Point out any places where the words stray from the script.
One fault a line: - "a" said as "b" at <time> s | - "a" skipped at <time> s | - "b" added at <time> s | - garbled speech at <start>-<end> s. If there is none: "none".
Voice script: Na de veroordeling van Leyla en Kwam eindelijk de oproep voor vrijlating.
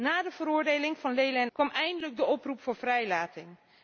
none